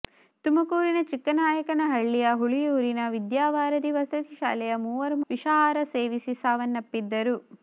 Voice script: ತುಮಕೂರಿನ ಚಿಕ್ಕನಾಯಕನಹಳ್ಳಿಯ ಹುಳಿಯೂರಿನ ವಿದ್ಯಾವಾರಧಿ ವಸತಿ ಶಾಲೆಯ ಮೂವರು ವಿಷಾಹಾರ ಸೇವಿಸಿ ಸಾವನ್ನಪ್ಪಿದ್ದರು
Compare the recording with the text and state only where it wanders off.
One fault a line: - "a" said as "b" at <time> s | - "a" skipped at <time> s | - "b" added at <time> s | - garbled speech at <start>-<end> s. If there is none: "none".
none